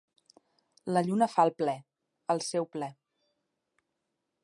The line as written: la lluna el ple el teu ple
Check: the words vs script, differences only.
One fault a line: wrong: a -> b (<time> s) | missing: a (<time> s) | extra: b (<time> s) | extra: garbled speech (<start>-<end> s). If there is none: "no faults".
extra: fa (1.3 s)
wrong: teu -> seu (2.5 s)